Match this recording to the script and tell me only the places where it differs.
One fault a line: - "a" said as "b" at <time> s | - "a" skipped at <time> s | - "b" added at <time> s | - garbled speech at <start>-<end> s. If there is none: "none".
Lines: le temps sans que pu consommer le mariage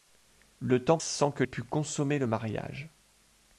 none